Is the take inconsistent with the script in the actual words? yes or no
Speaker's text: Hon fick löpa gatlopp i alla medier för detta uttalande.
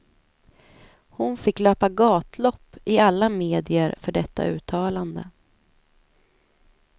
no